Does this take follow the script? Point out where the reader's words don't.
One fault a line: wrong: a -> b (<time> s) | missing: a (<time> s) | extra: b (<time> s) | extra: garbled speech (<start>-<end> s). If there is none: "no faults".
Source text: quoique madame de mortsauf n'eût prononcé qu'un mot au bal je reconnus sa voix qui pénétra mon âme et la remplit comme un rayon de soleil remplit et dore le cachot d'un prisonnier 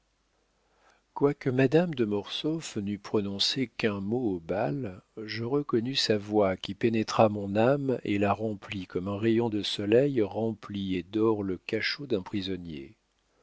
no faults